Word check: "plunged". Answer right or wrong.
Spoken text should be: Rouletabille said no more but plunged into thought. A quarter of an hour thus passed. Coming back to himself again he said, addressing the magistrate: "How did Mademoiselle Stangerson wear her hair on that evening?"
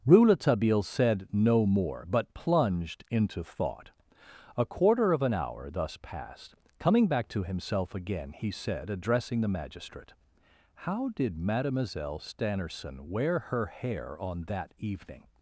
right